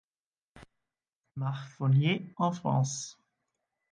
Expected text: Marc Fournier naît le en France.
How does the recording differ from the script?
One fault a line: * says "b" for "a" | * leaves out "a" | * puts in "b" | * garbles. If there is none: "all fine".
* leaves out "naît le"